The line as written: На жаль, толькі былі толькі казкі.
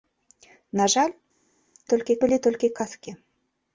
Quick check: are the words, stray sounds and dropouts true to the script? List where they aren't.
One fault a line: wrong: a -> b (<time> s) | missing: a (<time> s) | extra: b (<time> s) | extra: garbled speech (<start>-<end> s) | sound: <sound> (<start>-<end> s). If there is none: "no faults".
no faults